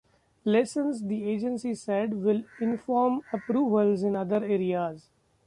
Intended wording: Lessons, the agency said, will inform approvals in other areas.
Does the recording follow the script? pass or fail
pass